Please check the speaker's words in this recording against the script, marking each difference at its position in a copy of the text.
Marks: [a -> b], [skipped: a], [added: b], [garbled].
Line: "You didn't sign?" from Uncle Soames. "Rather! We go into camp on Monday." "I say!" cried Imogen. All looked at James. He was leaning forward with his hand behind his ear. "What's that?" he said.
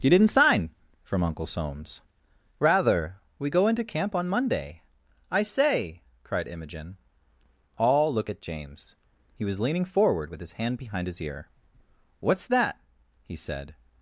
"You didn't sign?" from Uncle Soames. "Rather! We go into camp on Monday." "I say!" cried Imogen. All [looked -> look] at James. He was leaning forward with his hand behind his ear. "What's that?" he said.